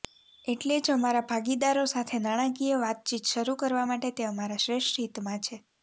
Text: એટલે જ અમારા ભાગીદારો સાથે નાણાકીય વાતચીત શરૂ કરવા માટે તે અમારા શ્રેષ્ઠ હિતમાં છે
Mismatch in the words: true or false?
false